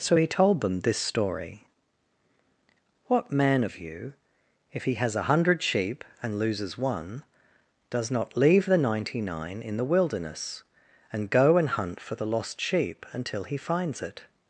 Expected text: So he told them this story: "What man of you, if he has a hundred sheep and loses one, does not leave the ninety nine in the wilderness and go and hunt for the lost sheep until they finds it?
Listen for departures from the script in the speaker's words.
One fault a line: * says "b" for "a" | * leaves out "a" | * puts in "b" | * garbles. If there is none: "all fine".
* says "he" for "they"